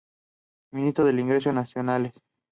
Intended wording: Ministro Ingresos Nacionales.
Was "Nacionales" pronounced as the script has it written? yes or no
yes